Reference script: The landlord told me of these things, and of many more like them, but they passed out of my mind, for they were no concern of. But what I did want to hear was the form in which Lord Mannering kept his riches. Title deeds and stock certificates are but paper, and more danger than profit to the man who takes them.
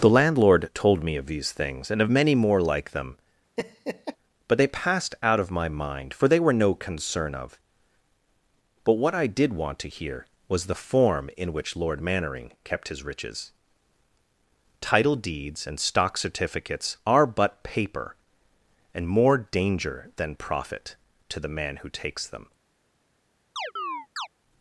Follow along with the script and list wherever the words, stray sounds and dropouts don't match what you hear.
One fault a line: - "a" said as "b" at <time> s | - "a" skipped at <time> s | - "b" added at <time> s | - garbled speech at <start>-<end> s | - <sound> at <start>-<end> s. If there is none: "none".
- laugh at 3.6-4.2 s
- chirp at 23.6-24.3 s